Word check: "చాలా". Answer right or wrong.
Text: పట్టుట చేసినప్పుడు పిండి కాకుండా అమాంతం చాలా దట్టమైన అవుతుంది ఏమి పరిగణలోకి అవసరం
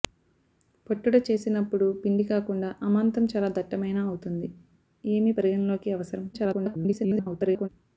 right